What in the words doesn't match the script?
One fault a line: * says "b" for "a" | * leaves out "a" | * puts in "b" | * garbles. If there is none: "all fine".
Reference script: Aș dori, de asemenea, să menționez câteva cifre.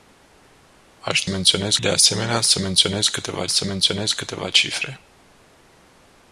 * says "menționez" for "dori"
* puts in "să menționez câteva"